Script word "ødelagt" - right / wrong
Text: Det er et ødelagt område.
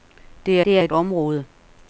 wrong